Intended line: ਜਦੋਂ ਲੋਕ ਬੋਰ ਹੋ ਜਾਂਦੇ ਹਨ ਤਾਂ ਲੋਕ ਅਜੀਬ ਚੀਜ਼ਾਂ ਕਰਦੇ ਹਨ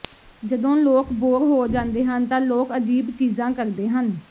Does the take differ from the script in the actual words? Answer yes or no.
no